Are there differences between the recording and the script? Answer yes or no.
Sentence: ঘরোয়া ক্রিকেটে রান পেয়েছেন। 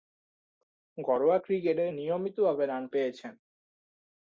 yes